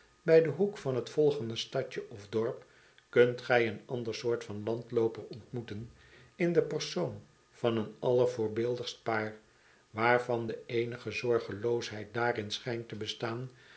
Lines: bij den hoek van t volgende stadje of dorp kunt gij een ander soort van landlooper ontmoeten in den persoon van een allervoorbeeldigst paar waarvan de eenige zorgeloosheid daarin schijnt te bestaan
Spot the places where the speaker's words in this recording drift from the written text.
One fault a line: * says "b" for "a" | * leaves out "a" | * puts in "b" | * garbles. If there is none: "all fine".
all fine